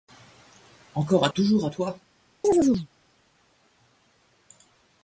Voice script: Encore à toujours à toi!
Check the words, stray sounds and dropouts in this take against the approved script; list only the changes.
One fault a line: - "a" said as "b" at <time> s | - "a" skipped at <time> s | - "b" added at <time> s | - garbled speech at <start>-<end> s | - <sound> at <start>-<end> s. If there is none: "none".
- chirp at 2.4-2.9 s